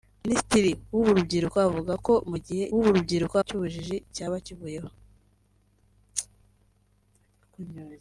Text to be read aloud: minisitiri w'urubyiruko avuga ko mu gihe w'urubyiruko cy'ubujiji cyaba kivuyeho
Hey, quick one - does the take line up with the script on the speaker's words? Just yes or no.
yes